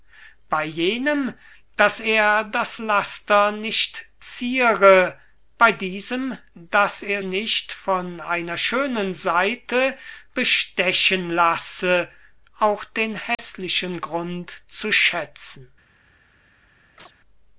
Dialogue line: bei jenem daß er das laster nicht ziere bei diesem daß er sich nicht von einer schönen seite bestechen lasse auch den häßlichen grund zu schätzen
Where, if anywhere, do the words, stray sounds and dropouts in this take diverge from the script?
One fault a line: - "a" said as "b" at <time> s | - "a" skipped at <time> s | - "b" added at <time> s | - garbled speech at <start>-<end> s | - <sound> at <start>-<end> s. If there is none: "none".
- "sich" skipped at 7.2 s
- dropout at 13.3-13.4 s
- chirp at 17.0-17.1 s